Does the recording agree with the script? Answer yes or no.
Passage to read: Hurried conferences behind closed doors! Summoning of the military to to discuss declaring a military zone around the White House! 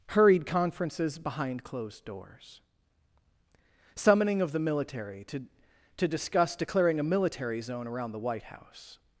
yes